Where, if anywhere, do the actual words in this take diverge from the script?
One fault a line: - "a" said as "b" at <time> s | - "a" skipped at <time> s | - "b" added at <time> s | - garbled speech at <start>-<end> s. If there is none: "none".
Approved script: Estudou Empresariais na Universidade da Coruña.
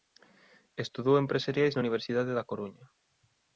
none